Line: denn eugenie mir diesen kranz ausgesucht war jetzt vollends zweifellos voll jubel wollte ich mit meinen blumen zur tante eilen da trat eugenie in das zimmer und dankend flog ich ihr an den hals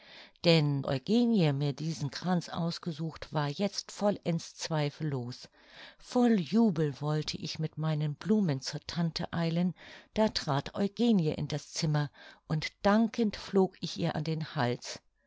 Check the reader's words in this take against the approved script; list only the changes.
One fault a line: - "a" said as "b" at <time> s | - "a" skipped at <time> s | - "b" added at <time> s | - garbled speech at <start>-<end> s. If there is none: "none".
none